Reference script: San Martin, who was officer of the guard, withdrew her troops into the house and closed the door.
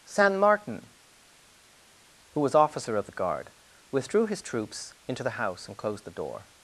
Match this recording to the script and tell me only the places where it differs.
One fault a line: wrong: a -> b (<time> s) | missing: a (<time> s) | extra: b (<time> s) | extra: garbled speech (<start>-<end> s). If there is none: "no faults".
wrong: her -> his (4.3 s)